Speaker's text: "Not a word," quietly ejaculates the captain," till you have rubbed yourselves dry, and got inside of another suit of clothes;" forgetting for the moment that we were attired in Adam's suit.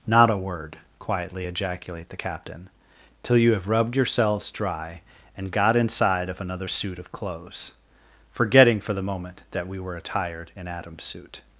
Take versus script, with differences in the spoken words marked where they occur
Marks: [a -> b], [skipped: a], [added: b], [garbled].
"Not a word," quietly [ejaculates -> ejaculate] the captain," till you have rubbed yourselves dry, and got inside of another suit of clothes;" forgetting for the moment that we were attired in Adam's suit.